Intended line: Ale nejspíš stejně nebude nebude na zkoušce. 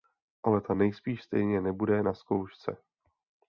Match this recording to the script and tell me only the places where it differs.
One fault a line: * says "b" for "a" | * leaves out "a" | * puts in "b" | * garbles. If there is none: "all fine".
* puts in "ta"
* leaves out "nebude"